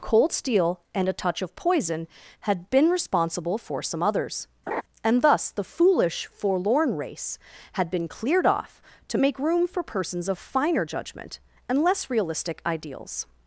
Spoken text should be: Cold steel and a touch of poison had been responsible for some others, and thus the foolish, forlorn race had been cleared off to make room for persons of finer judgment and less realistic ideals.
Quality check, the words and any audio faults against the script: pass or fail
fail